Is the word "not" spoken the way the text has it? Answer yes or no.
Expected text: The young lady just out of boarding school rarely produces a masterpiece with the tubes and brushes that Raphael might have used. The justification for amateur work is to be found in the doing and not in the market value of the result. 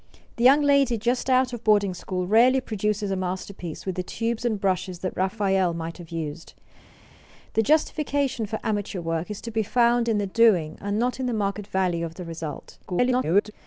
yes